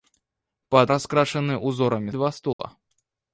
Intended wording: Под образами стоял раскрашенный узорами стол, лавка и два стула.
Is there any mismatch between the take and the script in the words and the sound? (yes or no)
yes